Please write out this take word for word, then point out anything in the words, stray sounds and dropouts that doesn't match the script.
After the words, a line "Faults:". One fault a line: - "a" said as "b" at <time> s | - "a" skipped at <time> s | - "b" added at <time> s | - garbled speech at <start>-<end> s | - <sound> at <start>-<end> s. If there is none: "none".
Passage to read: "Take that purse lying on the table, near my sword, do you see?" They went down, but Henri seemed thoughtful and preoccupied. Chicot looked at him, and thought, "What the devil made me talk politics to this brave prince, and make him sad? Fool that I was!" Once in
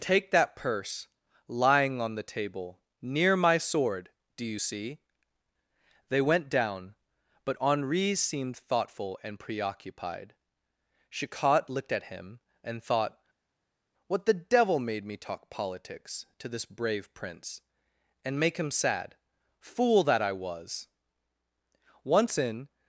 "Take that purse lying on the table, near my sword, do you see?" They went down, but Henri seemed thoughtful and preoccupied. Chicot looked at him, and thought, "What the devil made me talk politics to this brave prince, and make him sad? Fool that I was!" Once in
Faults:
none